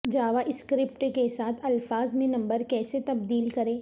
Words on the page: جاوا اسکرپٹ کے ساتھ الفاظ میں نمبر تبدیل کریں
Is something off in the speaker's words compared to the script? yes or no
yes